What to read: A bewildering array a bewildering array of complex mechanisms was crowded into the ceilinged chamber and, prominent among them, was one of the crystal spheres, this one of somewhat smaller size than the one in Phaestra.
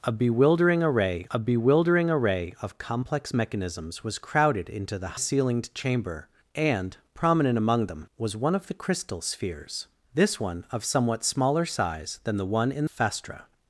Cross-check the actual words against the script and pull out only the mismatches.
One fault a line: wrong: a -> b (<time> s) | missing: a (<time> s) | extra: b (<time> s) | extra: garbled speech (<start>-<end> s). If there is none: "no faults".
no faults